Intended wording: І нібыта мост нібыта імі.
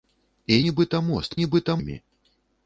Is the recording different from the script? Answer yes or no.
no